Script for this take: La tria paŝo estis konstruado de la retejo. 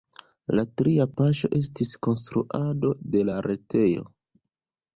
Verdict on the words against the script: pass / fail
pass